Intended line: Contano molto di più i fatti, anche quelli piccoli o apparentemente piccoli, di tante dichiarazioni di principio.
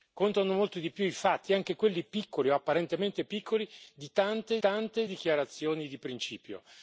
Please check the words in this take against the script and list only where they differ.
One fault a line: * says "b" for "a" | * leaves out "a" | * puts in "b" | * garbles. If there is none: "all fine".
* puts in "tante"